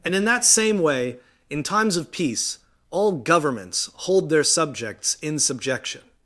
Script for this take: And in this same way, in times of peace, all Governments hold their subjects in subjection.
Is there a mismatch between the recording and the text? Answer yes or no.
yes